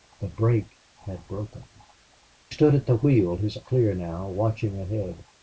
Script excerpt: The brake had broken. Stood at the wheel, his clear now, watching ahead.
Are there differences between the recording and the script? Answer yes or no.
no